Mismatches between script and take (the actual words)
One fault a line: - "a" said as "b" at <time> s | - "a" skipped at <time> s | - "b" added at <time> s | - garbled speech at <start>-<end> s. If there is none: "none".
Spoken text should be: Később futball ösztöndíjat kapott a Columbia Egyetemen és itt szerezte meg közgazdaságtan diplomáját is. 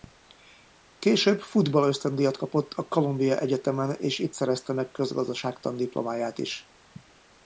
none